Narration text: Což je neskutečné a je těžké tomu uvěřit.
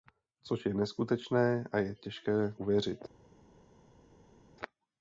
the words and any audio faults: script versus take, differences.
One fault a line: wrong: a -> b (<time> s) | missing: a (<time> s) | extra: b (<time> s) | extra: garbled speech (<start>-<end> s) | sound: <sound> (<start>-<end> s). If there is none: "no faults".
missing: tomu (2.5 s)